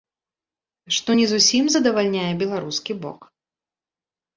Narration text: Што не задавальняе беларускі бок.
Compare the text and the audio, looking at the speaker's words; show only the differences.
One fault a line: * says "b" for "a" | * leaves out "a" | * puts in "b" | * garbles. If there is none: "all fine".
* puts in "зусім"